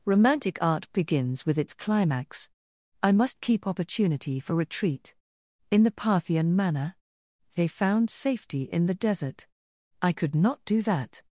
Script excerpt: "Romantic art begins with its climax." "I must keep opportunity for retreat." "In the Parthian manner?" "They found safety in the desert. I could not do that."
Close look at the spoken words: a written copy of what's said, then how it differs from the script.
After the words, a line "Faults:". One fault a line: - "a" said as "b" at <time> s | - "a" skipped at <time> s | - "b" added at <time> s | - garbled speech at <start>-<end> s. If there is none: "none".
"Romantic art begins with its climax." "I must keep opportunity for retreat." "In the Parthian manner?" "They found safety in the desert. I could not do that."
Faults:
none